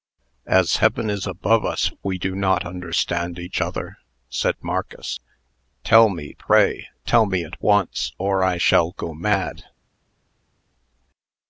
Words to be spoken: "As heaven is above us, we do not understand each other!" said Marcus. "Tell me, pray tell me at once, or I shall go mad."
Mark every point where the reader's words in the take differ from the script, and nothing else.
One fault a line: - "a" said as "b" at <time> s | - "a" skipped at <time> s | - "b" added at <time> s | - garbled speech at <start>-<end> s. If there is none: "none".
none